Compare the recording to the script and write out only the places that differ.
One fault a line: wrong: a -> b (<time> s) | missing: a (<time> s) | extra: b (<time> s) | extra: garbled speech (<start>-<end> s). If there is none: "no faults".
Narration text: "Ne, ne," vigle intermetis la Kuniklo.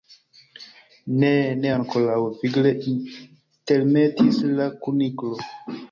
extra: ankoraŭ (1.7 s)